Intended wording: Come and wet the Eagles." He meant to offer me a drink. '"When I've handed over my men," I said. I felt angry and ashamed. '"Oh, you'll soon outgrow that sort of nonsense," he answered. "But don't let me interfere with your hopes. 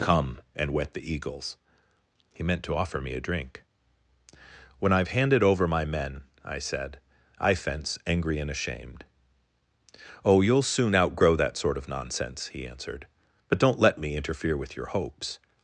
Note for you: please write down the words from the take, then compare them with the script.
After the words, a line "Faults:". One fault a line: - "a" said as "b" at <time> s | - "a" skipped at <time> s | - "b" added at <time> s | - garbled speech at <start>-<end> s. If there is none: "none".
Come and wet the Eagles." He meant to offer me a drink. '"When I've handed over my men," I said. I fence angry and ashamed. '"Oh, you'll soon outgrow that sort of nonsense," he answered. "But don't let me interfere with your hopes.
Faults:
- "felt" said as "fence" at 7.5 s